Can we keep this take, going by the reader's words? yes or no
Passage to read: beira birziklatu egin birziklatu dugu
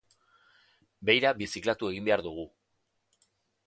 no